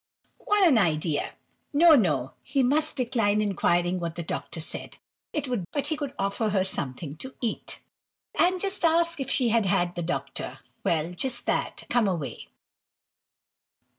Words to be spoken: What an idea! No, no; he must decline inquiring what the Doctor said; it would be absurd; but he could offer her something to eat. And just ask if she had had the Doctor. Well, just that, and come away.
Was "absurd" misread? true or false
true